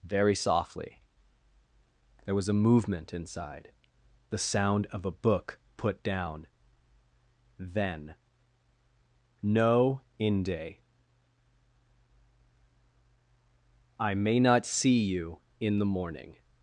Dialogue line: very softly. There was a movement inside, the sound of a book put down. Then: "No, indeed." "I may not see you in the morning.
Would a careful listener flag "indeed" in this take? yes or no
yes